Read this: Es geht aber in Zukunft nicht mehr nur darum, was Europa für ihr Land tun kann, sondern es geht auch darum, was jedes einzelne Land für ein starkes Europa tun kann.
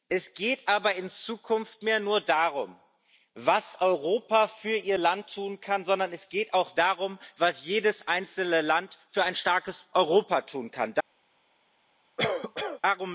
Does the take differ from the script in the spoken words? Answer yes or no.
yes